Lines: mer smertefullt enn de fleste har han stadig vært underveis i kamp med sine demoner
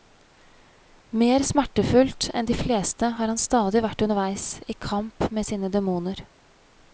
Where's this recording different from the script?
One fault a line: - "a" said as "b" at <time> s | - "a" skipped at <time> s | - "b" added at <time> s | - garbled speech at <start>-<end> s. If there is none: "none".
none